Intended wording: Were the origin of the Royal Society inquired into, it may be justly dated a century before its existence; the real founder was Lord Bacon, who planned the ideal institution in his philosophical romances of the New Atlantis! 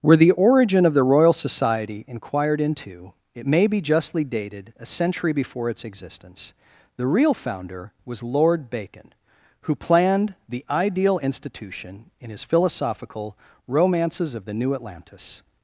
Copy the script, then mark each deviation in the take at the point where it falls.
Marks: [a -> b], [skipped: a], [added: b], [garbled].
Were the origin of the Royal Society inquired into, it may be justly dated a century before its existence; the real founder was Lord Bacon, who planned the ideal institution in his philosophical romances of the New Atlantis!